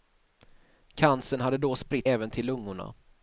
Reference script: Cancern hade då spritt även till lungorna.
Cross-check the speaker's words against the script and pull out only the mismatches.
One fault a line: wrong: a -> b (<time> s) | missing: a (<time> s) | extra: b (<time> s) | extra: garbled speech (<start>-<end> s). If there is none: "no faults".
no faults